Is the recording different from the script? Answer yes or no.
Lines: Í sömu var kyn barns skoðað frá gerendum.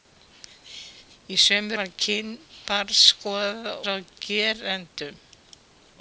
no